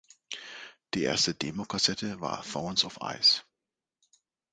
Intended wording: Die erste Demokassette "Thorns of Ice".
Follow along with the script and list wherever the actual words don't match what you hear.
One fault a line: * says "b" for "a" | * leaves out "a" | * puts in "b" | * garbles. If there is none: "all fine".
* puts in "war"